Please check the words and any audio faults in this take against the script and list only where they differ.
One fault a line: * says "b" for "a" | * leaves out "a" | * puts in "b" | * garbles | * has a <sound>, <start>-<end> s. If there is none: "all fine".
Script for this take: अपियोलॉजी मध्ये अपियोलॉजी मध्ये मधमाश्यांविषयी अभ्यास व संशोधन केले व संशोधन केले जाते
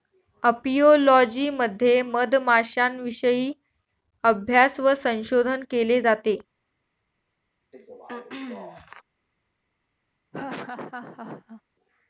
* leaves out "अपियोलॉजी मध्ये"
* leaves out "व संशोधन केले"
* has a throat clearing, 7.7-9.0 s
* has a laugh, 10.3-11.6 s